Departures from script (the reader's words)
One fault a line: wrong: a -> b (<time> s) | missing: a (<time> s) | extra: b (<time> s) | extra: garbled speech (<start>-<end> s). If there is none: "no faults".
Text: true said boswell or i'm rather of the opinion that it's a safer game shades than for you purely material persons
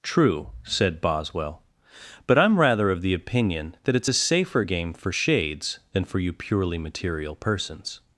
wrong: or -> but (2.3 s)
extra: for (4.9 s)